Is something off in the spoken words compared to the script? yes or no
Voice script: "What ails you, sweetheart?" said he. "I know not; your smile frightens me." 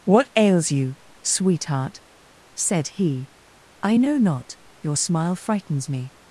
no